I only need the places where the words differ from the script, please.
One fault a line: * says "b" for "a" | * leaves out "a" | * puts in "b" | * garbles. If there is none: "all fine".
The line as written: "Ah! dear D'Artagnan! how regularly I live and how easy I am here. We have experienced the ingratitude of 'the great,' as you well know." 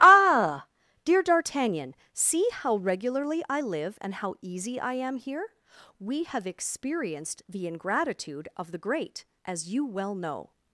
* puts in "see"